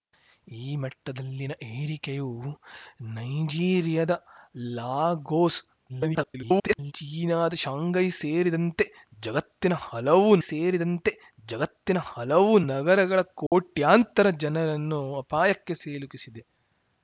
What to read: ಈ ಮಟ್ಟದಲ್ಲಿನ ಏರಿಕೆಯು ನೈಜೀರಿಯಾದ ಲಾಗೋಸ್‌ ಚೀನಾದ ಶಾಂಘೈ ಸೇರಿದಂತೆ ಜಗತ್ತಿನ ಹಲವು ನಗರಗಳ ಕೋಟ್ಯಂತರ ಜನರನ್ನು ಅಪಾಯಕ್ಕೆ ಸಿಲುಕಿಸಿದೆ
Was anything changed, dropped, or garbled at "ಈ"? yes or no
no